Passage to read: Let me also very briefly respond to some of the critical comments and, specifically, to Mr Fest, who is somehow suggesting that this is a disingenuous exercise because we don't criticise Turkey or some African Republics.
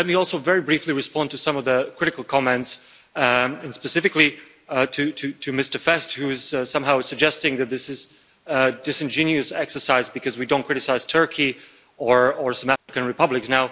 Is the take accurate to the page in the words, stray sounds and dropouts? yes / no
no